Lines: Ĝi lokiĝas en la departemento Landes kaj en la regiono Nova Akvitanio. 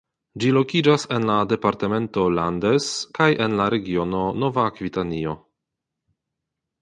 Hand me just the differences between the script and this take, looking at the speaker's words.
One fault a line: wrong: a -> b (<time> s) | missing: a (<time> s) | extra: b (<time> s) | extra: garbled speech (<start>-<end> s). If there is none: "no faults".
no faults